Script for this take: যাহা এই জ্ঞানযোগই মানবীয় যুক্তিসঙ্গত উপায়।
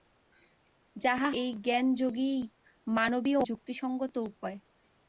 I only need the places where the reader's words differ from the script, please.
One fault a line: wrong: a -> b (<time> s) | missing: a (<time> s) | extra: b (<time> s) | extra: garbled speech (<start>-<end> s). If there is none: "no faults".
no faults